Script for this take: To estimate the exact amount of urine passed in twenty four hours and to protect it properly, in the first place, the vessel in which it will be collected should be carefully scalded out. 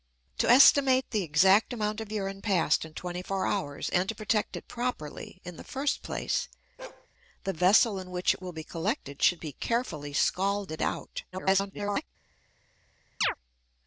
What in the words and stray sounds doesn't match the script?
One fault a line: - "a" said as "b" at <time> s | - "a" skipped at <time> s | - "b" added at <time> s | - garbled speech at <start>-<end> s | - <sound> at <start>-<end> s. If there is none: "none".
- bark at 6.8-7.1 s
- garbled speech at 11.3-12.1 s
- chirp at 13.2-13.3 s